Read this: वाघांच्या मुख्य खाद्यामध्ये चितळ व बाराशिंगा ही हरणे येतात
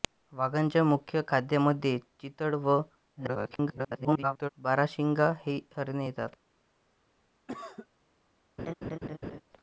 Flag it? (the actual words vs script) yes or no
yes